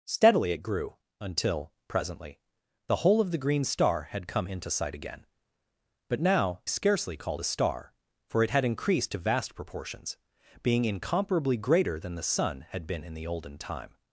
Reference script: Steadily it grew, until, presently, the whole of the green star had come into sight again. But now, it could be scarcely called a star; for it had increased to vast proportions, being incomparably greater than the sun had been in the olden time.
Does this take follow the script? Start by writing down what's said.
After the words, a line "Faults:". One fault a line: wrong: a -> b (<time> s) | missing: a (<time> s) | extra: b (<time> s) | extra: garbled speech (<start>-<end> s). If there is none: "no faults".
Steadily it grew, until, presently, the whole of the green star had come into sight again. But now, scarcely called a star; for it had increased to vast proportions, being incomparably greater than the sun had been in the olden time.
Faults:
missing: it could be (6.6 s)